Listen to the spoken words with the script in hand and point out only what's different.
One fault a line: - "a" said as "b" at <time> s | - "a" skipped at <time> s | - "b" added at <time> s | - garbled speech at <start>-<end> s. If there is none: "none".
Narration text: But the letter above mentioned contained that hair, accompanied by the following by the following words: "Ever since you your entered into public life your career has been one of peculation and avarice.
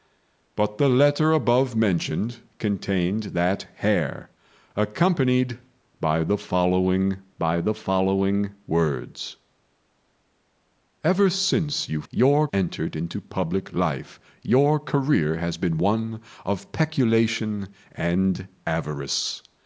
none